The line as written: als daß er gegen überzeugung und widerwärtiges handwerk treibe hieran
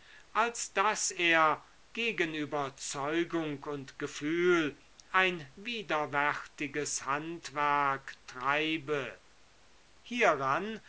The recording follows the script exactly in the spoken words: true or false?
false